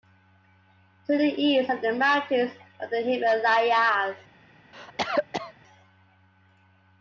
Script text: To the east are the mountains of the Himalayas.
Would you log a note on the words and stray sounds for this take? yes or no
yes